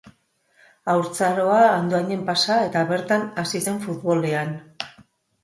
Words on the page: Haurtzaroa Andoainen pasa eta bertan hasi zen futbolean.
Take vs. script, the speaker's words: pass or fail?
pass